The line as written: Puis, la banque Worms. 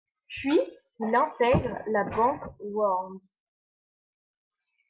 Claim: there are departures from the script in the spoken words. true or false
true